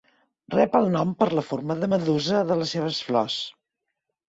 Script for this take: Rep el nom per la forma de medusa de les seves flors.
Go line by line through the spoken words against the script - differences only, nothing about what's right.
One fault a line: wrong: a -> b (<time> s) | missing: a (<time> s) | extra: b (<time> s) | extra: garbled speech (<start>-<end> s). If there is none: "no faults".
no faults